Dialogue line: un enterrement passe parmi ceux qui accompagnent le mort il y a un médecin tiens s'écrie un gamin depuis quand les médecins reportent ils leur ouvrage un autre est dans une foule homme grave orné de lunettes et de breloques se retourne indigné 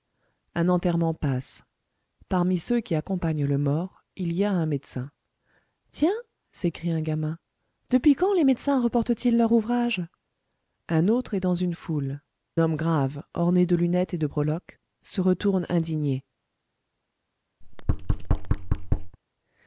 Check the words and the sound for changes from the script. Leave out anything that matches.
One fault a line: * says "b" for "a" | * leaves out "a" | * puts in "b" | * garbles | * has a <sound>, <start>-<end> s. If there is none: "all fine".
* has a thud, 17.6-19.2 s